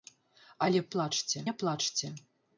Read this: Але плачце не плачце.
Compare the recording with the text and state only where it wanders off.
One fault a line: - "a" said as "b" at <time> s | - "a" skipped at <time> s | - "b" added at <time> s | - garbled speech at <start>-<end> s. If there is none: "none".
none